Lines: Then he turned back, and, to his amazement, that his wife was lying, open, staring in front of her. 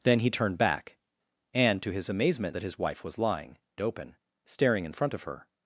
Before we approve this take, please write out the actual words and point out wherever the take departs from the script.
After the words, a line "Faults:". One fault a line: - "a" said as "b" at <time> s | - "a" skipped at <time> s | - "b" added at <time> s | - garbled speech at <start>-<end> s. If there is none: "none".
Then he turned back, and, to his amazement, that his wife was lying, open, staring in front of her.
Faults:
none